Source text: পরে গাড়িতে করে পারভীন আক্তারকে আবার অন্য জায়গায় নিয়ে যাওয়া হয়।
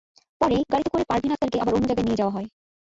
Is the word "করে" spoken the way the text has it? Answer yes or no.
yes